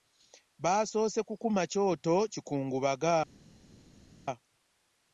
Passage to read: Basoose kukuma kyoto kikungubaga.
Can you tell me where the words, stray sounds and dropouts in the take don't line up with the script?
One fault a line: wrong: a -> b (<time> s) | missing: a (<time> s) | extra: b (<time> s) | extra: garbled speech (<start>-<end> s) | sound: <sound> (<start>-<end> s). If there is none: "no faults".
no faults